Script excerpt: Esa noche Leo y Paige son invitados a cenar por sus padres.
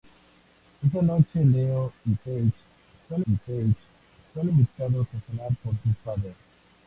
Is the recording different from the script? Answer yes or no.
yes